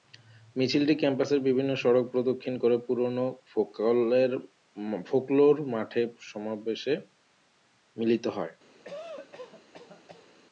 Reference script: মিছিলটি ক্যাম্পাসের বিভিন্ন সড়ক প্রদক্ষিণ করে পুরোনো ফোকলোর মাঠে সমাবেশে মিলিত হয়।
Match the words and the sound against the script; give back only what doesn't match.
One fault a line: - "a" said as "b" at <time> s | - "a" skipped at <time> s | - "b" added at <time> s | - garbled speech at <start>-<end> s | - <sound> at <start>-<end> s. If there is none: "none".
- cough at 8.8-10.3 s